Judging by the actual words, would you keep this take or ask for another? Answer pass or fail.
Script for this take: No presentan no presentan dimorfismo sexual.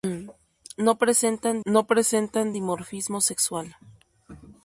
pass